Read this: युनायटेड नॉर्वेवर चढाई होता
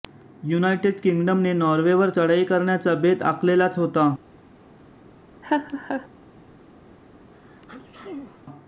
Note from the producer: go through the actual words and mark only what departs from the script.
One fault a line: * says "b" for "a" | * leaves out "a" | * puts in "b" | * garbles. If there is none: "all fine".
* puts in "किंग्डमने"
* puts in "करण्याचा बेत आखलेलाच"